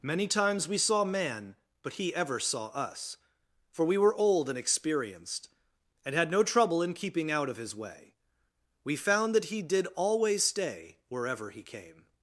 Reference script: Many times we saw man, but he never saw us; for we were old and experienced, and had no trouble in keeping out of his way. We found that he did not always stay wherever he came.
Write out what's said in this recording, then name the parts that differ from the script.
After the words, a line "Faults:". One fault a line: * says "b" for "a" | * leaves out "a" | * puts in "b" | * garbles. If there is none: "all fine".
Many times we saw man, but he ever saw us; for we were old and experienced, and had no trouble in keeping out of his way. We found that he did always stay wherever he came.
Faults:
* says "ever" for "never"
* leaves out "not"